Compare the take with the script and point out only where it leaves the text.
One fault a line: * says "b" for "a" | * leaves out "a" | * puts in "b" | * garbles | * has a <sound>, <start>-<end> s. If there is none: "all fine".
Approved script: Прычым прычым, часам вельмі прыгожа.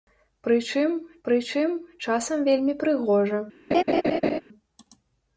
* has a laugh, 3.7-4.4 s